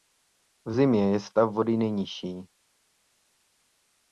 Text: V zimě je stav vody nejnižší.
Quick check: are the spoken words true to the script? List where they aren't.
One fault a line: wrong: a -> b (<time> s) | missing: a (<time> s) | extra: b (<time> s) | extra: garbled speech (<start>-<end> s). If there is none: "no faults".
no faults